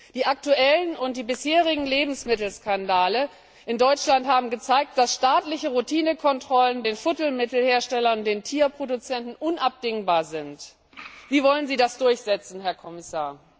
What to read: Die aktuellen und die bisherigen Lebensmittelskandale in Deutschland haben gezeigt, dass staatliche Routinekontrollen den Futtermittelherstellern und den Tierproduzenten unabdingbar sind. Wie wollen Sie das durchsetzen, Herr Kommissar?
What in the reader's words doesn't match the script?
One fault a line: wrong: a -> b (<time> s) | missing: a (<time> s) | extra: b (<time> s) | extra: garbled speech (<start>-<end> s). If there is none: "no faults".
no faults